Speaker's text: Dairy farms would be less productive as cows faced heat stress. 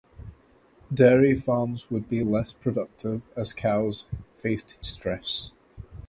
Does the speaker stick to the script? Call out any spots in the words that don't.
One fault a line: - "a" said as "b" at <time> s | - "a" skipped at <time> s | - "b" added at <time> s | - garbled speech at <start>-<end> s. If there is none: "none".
- "heat" skipped at 4.8 s